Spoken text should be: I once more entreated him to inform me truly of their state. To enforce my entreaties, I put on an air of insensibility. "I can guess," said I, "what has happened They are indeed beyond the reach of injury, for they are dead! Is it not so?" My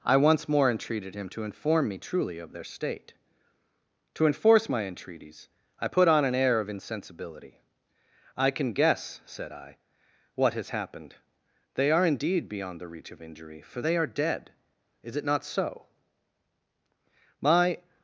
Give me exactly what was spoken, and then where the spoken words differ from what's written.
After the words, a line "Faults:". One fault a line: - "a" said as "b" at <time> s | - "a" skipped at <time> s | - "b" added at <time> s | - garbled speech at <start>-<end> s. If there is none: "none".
I once more entreated him to inform me truly of their state. To enforce my entreaties, I put on an air of insensibility. "I can guess," said I, "what has happened They are indeed beyond the reach of injury, for they are dead! Is it not so?" My
Faults:
none